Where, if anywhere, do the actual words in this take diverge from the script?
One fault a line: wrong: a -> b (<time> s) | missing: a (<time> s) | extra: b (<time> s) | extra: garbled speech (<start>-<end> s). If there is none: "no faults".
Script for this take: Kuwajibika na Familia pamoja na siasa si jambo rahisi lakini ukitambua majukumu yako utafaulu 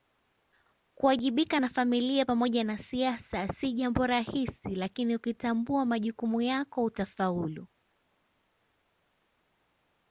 no faults